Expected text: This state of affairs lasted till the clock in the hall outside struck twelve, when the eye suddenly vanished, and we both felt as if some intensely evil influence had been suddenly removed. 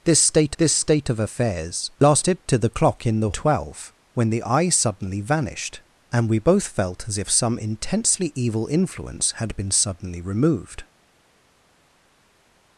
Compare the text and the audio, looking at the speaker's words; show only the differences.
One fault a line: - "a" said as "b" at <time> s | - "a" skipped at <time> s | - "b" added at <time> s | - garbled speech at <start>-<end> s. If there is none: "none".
- "this state" added at 0.6 s
- "hall outside struck" skipped at 3.3 s